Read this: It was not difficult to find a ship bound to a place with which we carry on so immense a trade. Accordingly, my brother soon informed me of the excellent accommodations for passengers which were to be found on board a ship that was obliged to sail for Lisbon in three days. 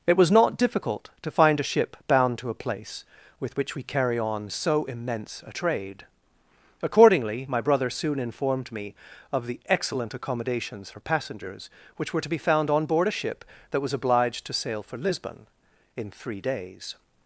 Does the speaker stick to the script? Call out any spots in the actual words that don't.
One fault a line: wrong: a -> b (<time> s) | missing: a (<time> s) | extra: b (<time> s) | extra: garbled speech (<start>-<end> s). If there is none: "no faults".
no faults